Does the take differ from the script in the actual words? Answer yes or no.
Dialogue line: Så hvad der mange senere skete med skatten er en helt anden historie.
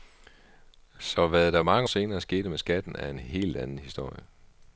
no